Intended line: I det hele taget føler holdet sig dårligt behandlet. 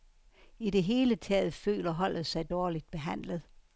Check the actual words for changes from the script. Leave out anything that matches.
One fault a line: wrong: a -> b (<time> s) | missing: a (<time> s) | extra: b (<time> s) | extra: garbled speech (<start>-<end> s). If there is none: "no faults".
no faults